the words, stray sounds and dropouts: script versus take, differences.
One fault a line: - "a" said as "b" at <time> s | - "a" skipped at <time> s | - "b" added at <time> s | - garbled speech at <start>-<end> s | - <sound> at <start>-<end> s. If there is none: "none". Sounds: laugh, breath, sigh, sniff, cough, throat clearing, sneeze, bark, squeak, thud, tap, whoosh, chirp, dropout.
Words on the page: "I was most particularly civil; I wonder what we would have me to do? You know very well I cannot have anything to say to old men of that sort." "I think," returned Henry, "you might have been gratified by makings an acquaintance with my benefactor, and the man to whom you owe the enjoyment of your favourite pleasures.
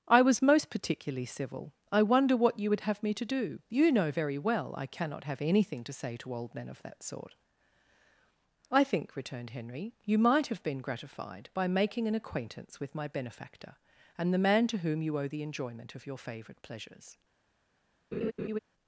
- "we" said as "you" at 2.6 s
- "makings" said as "making" at 11.7 s
- laugh at 18.1-18.6 s